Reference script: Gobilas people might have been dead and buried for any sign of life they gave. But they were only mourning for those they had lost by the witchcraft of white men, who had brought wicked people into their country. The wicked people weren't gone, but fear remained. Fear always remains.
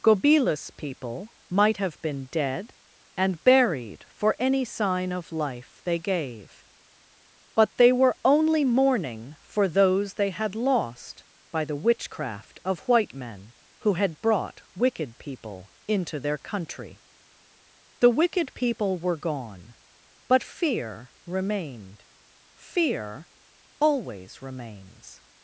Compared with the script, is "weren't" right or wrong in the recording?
wrong